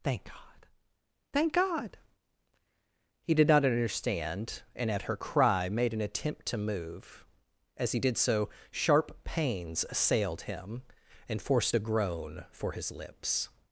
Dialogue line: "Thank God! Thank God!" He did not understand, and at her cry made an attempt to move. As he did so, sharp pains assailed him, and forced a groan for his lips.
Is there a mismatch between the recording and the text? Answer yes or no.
no